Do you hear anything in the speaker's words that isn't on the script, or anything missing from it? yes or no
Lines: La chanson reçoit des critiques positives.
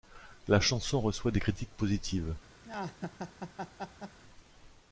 no